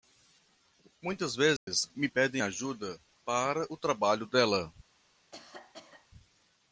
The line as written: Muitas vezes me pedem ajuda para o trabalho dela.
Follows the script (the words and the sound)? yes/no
no